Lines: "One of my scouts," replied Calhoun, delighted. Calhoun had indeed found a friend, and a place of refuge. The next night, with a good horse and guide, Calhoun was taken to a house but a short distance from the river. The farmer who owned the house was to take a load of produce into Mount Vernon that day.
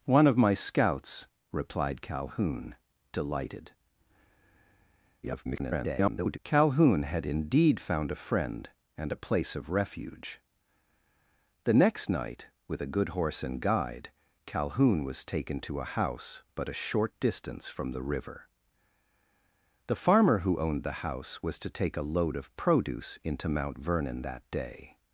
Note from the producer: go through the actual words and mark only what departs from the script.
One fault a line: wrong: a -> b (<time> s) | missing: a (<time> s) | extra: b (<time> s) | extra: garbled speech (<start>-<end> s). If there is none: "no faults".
extra: garbled speech (5.2-6.4 s)